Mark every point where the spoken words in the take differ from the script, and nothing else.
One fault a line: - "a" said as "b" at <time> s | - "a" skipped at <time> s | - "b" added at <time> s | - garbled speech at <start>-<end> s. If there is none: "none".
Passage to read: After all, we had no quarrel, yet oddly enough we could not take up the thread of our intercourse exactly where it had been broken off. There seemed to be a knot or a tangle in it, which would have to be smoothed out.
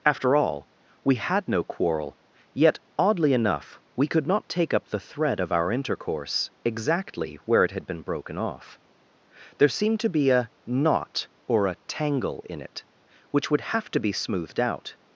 none